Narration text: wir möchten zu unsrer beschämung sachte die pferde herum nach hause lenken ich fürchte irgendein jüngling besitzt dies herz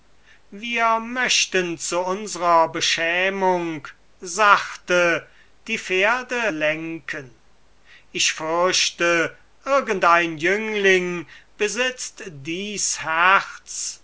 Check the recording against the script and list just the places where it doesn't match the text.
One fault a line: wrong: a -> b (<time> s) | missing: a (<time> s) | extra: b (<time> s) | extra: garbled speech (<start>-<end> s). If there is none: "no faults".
missing: herum nach hause (6.4 s)